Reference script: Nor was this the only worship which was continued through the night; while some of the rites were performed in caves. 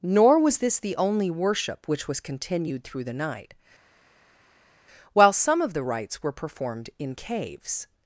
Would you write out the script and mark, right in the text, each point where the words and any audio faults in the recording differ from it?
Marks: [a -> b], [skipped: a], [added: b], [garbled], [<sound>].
Nor was this the only worship which was continued through the night; while some of the rites were performed in caves.